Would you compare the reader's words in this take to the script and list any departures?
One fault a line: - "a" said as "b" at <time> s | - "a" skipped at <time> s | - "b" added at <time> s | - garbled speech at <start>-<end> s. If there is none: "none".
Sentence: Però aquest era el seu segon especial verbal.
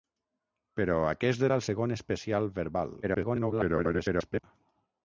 - "seu" skipped at 1.6 s
- garbled speech at 3.0-4.4 s